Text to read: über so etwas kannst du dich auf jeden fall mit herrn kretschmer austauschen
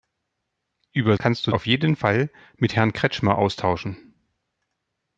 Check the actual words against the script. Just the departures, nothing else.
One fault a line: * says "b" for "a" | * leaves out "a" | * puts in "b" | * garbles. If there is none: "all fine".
* leaves out "so etwas"
* leaves out "dich"